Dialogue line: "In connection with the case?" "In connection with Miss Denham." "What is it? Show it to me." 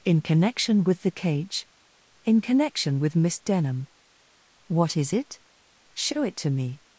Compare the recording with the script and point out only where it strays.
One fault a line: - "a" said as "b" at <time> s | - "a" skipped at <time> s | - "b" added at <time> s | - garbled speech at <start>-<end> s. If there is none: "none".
- "case" said as "cage" at 1.1 s